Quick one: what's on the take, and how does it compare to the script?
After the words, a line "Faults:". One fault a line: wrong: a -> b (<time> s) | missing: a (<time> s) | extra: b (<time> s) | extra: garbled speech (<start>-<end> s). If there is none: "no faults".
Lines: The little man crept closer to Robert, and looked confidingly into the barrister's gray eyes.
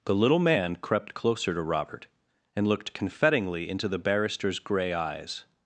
The little man crept closer to Robert, and looked confidingly into the barrister's gray eyes.
Faults:
no faults